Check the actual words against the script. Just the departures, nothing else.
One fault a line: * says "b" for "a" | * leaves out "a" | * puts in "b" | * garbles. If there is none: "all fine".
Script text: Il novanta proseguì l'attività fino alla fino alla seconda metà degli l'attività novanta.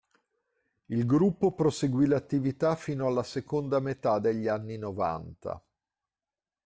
* says "gruppo" for "novanta"
* leaves out "fino alla"
* says "anni" for "l'attività"